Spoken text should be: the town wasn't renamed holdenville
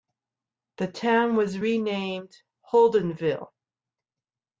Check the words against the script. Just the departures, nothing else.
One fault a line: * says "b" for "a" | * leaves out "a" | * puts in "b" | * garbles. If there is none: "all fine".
* says "was" for "wasn't"